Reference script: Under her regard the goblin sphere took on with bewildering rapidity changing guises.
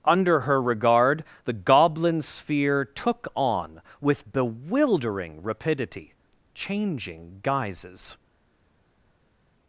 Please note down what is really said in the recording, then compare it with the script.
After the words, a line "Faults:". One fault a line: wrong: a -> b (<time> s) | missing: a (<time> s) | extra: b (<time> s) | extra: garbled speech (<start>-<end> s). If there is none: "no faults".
Under her regard the goblin sphere took on with bewildering rapidity changing guises.
Faults:
no faults